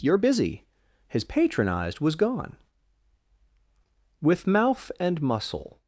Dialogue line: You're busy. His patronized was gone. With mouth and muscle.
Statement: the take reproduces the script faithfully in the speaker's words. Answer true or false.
true